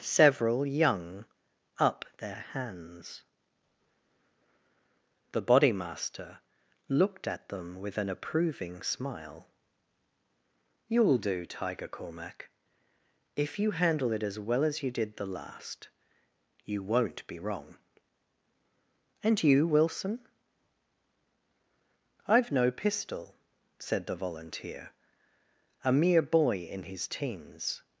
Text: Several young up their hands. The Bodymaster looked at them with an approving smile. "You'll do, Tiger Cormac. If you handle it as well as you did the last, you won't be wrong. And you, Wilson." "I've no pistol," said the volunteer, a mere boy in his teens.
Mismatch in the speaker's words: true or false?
false